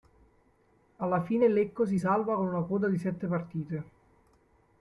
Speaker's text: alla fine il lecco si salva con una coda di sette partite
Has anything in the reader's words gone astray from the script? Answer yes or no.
no